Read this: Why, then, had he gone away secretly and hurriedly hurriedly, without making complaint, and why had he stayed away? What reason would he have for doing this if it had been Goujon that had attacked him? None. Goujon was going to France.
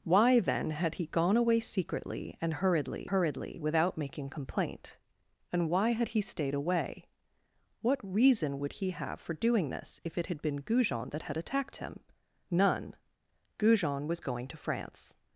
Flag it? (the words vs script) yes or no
no